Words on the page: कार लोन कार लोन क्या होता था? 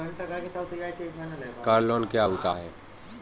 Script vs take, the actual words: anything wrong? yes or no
yes